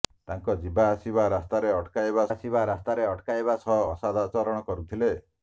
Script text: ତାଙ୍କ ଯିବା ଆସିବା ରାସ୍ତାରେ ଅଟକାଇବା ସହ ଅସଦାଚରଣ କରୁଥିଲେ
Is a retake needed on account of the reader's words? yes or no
yes